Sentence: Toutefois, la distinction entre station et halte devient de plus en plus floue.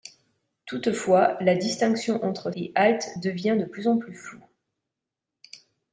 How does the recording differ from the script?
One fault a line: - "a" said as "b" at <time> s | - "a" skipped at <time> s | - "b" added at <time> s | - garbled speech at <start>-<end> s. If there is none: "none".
- "station" skipped at 2.5 s